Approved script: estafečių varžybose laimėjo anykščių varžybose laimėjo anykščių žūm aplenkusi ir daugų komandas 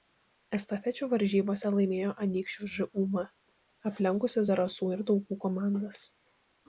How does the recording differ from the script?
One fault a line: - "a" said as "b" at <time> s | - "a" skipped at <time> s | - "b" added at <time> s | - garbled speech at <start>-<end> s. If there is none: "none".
- "varžybose laimėjo anykščių" skipped at 2.7 s
- "zarasų" added at 4.5 s